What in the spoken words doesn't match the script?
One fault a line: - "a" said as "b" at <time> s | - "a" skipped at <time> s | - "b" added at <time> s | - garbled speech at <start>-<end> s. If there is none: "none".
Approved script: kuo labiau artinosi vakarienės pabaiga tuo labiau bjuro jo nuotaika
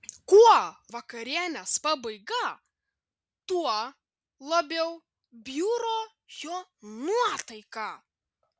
- "labiau artinosi" skipped at 0.6 s